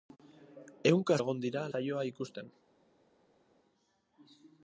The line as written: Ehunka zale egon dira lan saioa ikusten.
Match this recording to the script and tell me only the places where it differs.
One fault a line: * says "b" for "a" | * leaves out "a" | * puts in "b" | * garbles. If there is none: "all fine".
* leaves out "zale"
* leaves out "lan"